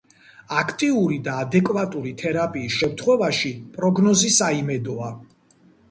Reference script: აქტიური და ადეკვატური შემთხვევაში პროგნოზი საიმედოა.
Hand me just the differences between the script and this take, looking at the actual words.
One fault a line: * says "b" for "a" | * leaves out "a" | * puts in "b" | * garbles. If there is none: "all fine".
* puts in "თერაპიის"